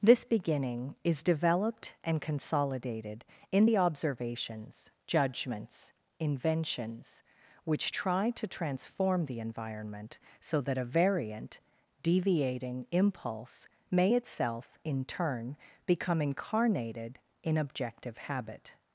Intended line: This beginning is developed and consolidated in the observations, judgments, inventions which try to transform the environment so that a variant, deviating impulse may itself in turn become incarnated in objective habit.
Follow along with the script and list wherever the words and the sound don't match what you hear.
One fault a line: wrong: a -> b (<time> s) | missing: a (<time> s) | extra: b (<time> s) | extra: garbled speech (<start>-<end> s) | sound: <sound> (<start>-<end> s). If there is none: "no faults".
no faults